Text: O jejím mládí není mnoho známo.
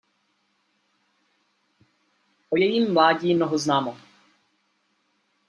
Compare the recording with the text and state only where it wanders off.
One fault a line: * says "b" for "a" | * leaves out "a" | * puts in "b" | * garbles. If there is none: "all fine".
* leaves out "není"